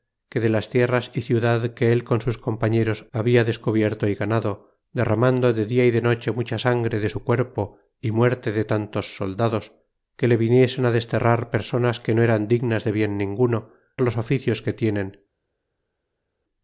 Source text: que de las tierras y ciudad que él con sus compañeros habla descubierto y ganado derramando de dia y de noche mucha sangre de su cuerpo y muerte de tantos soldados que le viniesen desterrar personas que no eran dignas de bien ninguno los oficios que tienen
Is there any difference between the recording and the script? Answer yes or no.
no